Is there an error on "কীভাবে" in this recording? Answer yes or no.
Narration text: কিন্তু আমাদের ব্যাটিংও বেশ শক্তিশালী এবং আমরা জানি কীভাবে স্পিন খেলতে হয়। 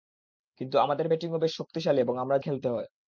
yes